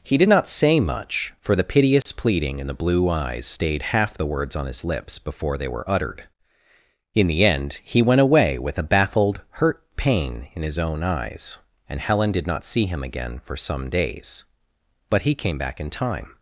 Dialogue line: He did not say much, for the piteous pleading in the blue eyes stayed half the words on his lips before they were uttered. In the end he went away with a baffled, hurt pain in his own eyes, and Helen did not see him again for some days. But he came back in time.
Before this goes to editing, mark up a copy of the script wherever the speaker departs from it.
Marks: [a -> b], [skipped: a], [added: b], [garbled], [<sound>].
He did not say much, for the piteous [dropout] pleading in the blue eyes stayed half the words on his lips before they were uttered. In the end he went away with a baffled, hurt pain in his own eyes, and Helen did not see him again for some days. But he came back in time.